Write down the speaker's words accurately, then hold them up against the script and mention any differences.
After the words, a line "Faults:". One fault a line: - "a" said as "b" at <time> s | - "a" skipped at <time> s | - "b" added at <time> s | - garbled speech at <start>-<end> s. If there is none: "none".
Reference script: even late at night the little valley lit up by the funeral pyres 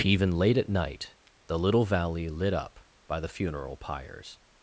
even late at night the little valley lit up by the funeral pyres
Faults:
none